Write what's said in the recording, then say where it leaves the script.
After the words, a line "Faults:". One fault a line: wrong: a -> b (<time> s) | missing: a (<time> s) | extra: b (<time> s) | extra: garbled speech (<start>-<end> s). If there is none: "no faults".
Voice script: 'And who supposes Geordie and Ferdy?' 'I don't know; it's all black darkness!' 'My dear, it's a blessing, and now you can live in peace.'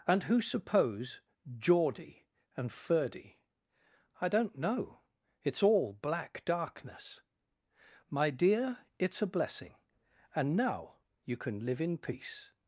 'And who suppose Geordie and Ferdy?' 'I don't know; it's all black darkness!' 'My dear, it's a blessing, and now you can live in peace.'
Faults:
wrong: supposes -> suppose (0.4 s)